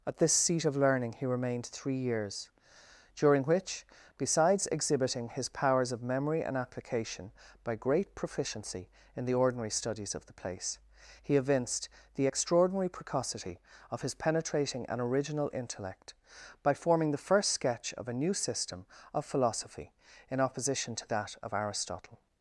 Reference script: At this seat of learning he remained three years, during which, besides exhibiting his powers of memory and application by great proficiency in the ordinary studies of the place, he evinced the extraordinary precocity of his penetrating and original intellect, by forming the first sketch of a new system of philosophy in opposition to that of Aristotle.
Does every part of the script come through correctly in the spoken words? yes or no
yes